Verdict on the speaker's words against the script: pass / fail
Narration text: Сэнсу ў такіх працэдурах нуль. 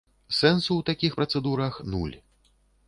pass